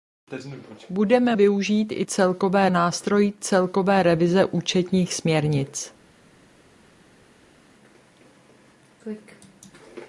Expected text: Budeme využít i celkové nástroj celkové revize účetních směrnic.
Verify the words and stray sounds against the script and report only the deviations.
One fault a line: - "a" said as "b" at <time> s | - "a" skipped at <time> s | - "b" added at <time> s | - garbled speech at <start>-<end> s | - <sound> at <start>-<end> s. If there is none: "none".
none